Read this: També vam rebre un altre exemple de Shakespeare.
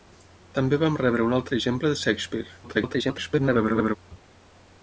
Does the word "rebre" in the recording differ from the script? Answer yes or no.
no